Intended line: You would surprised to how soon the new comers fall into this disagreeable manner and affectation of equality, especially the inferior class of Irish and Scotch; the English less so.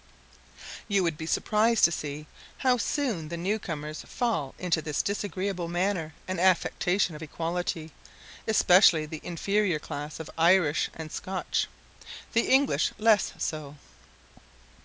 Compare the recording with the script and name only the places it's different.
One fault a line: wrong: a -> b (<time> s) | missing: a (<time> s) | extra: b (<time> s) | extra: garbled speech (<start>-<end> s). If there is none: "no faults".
extra: be (1.1 s)
extra: see (1.9 s)